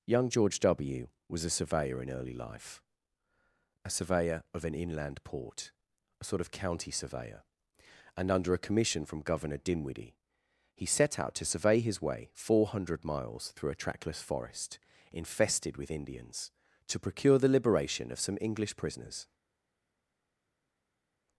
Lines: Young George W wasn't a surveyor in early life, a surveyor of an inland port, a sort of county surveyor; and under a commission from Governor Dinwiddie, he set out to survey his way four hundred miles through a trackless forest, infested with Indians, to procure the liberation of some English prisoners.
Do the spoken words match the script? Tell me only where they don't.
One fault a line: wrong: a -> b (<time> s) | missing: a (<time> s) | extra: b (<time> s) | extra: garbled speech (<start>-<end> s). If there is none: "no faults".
wrong: wasn't -> was (1.3 s)